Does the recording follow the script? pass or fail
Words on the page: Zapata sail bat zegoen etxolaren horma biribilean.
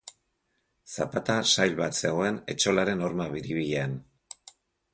pass